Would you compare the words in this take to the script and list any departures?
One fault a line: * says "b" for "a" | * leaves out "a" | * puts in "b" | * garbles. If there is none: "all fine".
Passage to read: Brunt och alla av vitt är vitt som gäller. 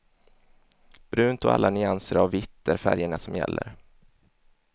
* puts in "nyanser"
* says "färgerna" for "vitt"